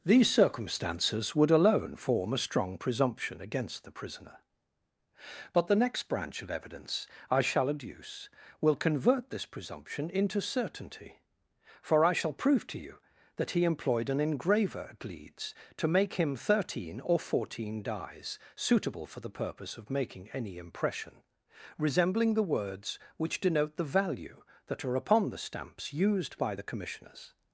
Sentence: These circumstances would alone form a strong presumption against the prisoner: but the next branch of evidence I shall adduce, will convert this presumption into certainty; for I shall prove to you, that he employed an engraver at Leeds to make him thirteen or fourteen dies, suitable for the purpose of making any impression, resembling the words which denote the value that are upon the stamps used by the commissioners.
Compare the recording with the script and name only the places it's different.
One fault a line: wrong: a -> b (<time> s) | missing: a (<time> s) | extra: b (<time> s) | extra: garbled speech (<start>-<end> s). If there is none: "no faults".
no faults